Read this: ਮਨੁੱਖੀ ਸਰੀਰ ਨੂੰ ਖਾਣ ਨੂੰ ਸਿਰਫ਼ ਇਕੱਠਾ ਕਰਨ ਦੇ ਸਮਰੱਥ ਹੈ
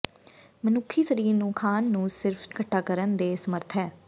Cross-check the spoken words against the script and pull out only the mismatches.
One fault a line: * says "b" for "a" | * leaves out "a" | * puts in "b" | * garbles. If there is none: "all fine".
all fine